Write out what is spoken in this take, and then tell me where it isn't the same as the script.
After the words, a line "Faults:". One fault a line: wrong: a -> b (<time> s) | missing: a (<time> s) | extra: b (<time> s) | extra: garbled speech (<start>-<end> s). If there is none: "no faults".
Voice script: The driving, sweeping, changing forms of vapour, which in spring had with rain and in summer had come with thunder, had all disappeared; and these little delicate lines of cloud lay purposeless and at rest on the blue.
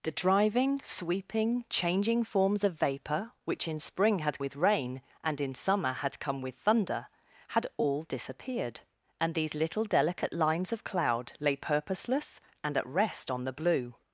The driving, sweeping, changing forms of vapour, which in spring had with rain and in summer had come with thunder, had all disappeared; and these little delicate lines of cloud lay purposeless and at rest on the blue.
Faults:
no faults